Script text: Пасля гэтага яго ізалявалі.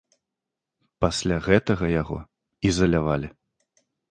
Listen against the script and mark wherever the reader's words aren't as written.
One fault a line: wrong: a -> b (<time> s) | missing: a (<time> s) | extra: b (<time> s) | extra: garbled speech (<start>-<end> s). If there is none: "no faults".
no faults